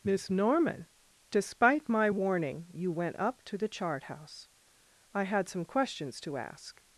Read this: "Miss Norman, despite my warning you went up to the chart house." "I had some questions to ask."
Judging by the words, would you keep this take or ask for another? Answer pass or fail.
pass